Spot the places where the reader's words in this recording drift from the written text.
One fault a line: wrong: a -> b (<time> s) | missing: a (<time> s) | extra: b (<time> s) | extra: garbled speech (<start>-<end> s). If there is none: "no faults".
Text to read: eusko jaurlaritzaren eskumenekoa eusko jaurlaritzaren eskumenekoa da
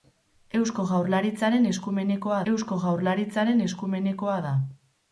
no faults